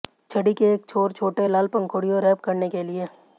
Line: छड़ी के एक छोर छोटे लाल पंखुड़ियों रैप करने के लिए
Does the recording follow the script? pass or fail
pass